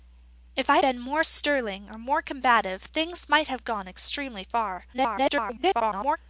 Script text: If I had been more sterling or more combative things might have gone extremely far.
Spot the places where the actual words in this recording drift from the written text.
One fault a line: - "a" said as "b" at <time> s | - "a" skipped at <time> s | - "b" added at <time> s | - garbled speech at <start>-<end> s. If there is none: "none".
- "had" skipped at 0.8 s
- garbled speech at 4.9-6.2 s